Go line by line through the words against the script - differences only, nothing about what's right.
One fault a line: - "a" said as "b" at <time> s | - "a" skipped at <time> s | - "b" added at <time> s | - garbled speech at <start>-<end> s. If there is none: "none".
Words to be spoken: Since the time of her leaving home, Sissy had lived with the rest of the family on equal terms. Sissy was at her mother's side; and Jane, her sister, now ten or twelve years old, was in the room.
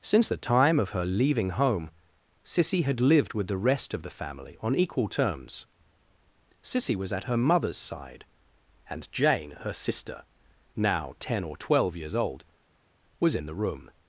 none